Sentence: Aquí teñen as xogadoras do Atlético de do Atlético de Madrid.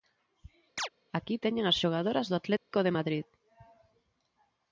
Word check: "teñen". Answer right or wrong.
right